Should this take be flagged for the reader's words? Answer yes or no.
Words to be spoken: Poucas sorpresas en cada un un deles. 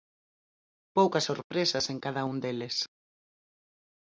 yes